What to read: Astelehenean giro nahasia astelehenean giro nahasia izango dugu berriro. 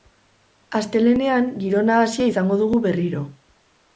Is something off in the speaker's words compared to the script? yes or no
yes